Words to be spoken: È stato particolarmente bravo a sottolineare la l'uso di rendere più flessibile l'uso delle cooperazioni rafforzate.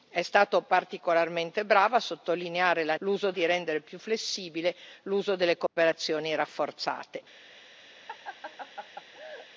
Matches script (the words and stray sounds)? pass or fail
fail